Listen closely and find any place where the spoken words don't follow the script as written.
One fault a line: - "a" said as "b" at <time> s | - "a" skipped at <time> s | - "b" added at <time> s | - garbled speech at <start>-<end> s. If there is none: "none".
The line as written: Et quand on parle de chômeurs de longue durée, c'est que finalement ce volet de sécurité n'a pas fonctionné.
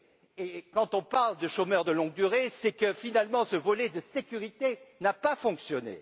none